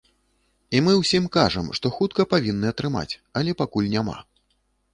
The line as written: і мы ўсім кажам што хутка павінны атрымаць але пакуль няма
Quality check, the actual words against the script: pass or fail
pass